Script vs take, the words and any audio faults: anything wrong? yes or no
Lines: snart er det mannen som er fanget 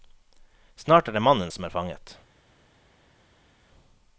no